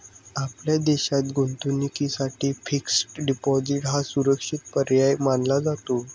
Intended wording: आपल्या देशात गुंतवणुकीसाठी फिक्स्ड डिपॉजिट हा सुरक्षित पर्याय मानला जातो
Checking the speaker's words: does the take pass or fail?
pass